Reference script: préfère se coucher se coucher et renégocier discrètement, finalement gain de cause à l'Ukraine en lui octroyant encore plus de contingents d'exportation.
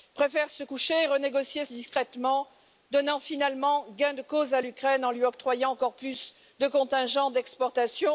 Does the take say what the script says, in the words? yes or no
no